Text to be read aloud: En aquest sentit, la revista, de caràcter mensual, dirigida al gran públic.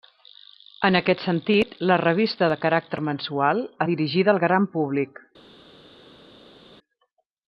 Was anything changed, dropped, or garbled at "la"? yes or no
no